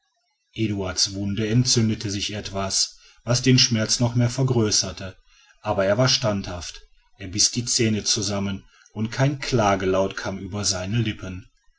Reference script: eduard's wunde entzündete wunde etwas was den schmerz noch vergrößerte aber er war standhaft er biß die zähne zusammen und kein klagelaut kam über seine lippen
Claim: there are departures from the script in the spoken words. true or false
true